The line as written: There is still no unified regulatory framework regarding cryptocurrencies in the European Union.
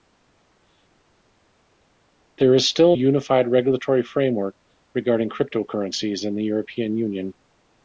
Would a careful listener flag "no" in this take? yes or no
yes